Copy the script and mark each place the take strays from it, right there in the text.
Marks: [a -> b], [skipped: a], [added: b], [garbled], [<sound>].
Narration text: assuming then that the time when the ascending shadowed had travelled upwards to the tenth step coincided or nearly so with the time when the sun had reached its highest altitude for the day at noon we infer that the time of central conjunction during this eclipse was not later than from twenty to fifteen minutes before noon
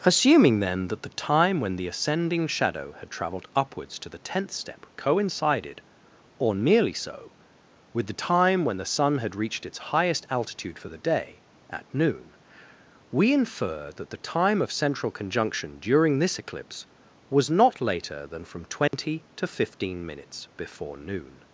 assuming then that the time when the ascending [shadowed -> shadow] had travelled upwards to the tenth step coincided or nearly so with the time when the sun had reached its highest altitude for the day at noon we infer that the time of central conjunction during this eclipse was not later than from twenty [dropout] to fifteen minutes before noon